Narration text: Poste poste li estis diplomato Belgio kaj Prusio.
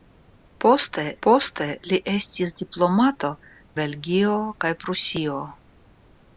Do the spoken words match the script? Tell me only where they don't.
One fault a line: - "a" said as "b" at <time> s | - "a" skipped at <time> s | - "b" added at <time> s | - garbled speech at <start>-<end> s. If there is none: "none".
none